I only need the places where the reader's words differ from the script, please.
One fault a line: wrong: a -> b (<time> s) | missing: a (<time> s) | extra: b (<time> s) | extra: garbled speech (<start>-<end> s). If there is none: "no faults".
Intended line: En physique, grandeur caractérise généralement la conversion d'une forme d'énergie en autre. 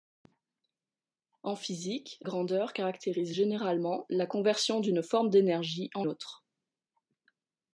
no faults